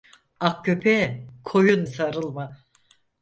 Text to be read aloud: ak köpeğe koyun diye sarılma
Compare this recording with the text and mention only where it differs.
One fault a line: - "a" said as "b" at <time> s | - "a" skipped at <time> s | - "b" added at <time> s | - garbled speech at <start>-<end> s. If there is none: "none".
- "diye" skipped at 1.9 s